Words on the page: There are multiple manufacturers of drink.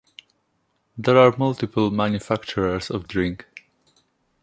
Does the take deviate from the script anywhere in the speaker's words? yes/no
no